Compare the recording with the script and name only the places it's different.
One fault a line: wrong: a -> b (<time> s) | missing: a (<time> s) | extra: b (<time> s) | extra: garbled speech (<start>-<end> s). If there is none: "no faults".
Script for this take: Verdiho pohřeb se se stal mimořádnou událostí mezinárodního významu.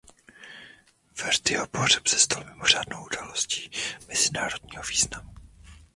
missing: se (2.2 s)